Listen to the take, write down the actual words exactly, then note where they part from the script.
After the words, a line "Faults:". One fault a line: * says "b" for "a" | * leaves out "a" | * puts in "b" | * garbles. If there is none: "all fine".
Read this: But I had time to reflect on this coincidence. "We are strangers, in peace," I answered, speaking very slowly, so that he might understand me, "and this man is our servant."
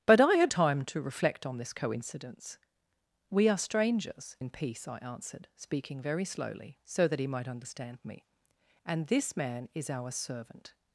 But I had time to reflect on this coincidence. "We are strangers, in peace," I answered, speaking very slowly, so that he might understand me, "and this man is our servant."
Faults:
all fine